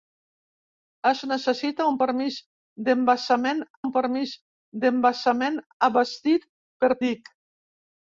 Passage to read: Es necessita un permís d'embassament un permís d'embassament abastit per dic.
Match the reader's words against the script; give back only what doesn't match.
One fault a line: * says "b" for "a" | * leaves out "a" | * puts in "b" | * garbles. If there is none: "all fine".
all fine